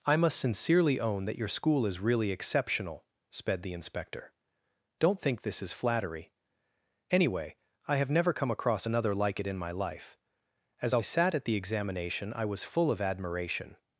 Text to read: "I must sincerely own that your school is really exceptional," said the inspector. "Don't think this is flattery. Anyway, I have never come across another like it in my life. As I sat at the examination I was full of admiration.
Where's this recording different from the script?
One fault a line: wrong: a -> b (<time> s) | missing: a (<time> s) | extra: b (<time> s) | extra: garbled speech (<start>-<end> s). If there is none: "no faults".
wrong: said -> sped (3.3 s)